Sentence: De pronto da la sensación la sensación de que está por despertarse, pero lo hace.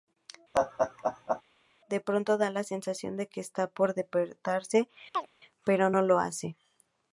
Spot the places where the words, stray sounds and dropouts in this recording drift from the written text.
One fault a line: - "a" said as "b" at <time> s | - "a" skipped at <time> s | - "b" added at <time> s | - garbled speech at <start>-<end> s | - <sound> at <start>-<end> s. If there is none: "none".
- laugh at 0.5-1.4 s
- "la sensación" skipped at 3.2 s
- chirp at 5.1-5.3 s
- "no" added at 5.9 s